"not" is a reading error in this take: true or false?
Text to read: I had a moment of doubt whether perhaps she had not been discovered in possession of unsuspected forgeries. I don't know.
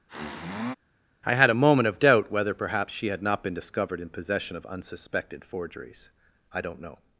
false